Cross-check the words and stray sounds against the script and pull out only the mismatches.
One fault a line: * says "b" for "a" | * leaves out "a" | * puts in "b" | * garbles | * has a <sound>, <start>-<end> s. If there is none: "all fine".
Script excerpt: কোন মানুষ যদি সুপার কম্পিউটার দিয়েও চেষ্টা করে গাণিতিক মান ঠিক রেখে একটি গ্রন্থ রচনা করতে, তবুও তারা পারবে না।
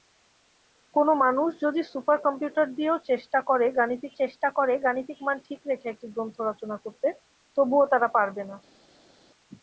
* puts in "চেষ্টা করে গাণিতিক"